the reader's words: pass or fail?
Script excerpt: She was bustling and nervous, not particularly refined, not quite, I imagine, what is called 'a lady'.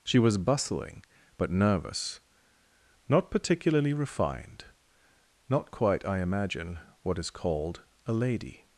fail